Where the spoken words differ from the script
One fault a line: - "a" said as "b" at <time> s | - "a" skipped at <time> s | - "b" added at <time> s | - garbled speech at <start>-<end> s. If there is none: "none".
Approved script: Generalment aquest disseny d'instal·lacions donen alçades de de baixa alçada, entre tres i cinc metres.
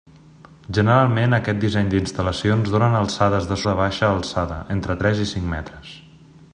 none